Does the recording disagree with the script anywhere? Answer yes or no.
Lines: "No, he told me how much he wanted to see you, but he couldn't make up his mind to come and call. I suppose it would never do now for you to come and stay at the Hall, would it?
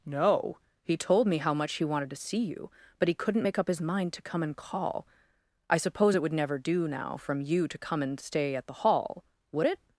yes